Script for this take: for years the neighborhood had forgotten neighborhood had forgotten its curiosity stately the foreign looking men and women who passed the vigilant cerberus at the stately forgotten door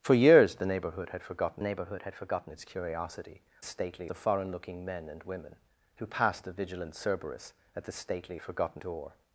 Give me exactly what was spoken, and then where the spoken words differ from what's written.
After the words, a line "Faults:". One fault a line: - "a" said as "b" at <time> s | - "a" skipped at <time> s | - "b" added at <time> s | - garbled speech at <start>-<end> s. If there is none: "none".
for years the neighborhood had forgotten neighborhood had forgotten its curiosity stately the foreign looking men and women who passed the vigilant cerberus at the stately forgotten door
Faults:
none